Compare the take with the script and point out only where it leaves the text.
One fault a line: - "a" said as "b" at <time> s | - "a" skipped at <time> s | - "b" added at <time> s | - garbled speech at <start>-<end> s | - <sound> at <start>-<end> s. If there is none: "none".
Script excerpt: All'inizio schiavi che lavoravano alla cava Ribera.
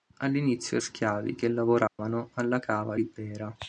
- dropout at 1.9-2.0 s